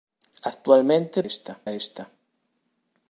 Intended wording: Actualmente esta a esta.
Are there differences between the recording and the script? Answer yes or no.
no